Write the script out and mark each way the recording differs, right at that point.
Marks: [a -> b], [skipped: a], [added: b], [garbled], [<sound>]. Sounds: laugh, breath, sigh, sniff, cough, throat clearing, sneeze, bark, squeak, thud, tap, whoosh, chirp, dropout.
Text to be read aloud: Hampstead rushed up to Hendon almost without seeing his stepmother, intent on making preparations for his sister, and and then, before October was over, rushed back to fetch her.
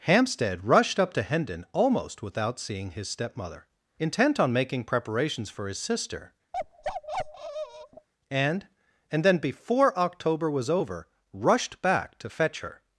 Hampstead rushed up to Hendon almost without seeing his stepmother, intent on making preparations for his sister, [bark] and and then, before October was over, rushed back to fetch her.